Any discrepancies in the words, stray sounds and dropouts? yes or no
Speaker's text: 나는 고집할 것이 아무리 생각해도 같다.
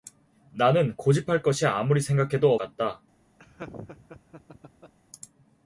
yes